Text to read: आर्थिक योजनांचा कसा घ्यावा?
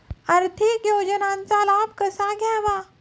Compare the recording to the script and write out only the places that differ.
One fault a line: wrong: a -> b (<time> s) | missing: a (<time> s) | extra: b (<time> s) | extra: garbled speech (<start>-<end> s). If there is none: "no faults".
extra: लाभ (1.6 s)